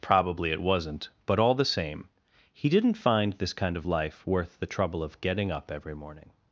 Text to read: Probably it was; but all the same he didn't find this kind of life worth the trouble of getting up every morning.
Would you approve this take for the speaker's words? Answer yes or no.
no